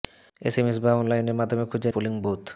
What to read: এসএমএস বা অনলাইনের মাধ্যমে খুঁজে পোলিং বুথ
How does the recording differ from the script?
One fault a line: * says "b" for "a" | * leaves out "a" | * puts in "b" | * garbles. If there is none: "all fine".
all fine